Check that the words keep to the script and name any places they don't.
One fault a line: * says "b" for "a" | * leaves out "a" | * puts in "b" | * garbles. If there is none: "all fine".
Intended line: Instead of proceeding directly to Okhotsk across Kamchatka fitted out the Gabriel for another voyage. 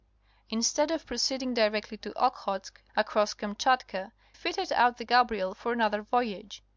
all fine